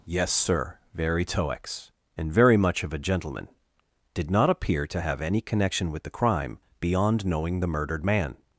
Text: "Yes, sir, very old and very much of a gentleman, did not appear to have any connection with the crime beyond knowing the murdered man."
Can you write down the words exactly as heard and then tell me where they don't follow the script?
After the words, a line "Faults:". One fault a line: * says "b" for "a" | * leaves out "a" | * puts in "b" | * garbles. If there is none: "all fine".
"Yes, sir, very toex and very much of a gentleman, did not appear to have any connection with the crime beyond knowing the murdered man."
Faults:
* says "toex" for "old"